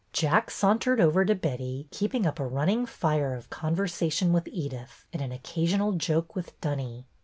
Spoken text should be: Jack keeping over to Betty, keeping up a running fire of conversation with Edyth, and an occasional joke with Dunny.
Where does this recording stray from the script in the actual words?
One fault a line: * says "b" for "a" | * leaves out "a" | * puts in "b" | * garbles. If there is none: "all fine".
* says "sauntered" for "keeping"